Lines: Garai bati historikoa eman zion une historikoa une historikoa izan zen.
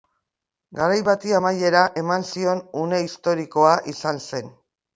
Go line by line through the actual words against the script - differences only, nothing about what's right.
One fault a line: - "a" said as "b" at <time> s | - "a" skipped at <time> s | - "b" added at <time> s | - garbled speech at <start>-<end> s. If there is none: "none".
- "historikoa" said as "amaiera" at 1.4 s
- "une historikoa" skipped at 3.7 s